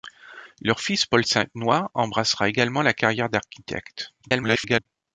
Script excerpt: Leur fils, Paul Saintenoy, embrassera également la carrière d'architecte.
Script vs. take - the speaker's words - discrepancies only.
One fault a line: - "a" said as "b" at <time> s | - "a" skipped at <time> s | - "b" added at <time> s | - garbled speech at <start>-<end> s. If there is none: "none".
- garbled speech at 4.2-4.9 s